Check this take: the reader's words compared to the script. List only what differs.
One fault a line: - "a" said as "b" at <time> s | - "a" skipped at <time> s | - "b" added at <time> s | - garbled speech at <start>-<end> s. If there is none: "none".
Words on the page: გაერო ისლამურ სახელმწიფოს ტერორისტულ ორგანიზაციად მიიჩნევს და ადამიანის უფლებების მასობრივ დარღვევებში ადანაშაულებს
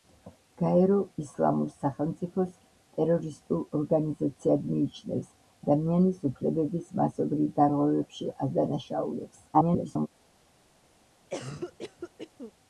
- "და" skipped at 5.3 s
- garbled speech at 9.5-10.1 s